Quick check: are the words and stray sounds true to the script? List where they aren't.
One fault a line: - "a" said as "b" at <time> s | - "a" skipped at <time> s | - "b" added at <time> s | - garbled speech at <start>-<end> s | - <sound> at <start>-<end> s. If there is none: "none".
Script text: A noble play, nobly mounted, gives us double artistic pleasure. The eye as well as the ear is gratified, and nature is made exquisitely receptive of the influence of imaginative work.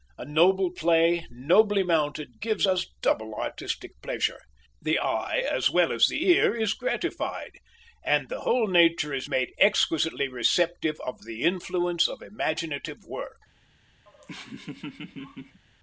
- "the whole" added at 8.3 s
- laugh at 14.1-15.6 s